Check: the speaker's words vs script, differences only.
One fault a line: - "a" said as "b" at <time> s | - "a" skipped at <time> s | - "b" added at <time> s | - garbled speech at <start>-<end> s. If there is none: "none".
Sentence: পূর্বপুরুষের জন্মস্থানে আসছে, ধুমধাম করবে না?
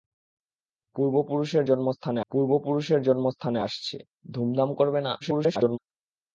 - "পূর্বপুরুষের জন্মস্থানে" added at 2.3 s
- garbled speech at 5.2-5.8 s